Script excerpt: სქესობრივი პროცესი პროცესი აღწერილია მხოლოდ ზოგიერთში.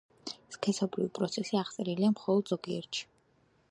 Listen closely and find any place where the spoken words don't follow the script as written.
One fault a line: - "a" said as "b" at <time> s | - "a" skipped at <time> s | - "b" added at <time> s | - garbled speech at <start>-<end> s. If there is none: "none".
- "პროცესი" skipped at 1.6 s